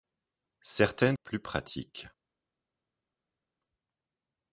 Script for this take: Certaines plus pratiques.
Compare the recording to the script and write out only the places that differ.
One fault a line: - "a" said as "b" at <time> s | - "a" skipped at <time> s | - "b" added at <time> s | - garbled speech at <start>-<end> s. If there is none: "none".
none